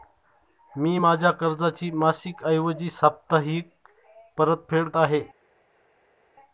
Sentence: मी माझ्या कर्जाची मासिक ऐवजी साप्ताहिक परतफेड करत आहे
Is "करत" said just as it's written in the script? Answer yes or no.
no